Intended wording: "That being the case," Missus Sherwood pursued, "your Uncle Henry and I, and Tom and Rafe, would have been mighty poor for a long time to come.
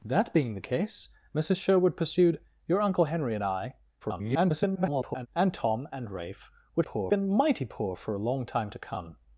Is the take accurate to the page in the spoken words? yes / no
no